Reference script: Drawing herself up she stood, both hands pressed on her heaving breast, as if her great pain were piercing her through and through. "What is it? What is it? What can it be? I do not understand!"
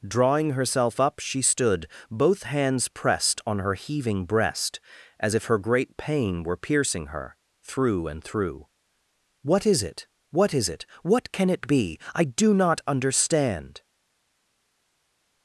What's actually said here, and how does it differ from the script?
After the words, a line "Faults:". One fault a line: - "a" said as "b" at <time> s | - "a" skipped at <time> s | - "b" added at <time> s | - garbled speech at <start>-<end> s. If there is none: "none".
Drawing herself up she stood, both hands pressed on her heaving breast, as if her great pain were piercing her through and through. "What is it? What is it? What can it be? I do not understand!"
Faults:
none